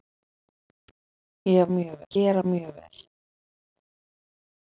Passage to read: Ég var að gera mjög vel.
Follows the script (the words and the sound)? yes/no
no